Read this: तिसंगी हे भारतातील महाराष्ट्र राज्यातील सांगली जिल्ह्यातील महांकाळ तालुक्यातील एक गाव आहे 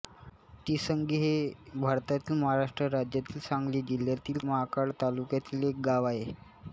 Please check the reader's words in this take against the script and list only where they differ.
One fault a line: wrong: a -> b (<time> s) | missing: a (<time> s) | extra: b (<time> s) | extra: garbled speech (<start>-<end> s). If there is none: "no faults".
no faults